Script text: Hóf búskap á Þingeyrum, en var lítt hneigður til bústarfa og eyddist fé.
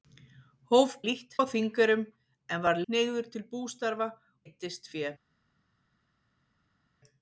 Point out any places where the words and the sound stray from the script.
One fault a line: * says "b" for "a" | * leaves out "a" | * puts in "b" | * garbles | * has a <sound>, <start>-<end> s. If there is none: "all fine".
* says "lítt" for "búskap"
* leaves out "lítt"
* leaves out "og"